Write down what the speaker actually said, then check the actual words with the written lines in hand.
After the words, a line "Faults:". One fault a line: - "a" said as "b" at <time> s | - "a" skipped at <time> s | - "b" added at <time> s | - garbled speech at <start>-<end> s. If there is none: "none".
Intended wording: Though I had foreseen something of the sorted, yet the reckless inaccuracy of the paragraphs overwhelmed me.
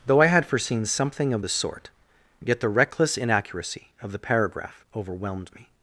Though I had foreseen something of the sort, yet the reckless inaccuracy of the paragraph overwhelmed me.
Faults:
- "sorted" said as "sort" at 1.5 s
- "paragraphs" said as "paragraph" at 4.2 s